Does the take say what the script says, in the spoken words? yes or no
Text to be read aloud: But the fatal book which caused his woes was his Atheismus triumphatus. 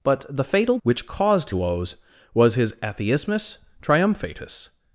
no